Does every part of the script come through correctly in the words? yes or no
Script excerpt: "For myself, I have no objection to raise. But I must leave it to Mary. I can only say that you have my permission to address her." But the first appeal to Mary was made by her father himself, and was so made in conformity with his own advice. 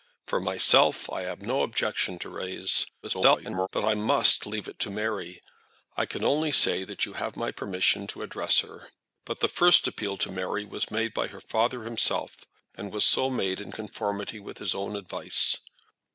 no